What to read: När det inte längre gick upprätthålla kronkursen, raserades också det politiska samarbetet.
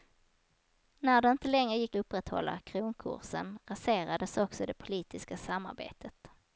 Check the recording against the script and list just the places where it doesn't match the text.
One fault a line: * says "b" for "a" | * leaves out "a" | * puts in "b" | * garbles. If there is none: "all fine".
all fine